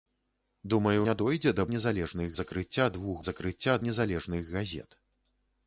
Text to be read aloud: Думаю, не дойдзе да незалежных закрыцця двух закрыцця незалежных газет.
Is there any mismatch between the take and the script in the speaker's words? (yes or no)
no